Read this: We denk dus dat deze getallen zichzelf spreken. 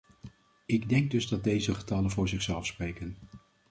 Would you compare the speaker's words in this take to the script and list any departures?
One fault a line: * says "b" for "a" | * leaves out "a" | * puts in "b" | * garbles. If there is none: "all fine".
* says "Ik" for "We"
* puts in "voor"